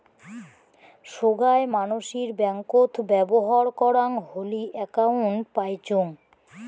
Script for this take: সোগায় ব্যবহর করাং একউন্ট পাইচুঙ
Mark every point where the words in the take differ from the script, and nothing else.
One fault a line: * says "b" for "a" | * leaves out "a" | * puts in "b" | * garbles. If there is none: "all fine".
* puts in "মানসির ব্যাঙ্কত"
* puts in "হলি"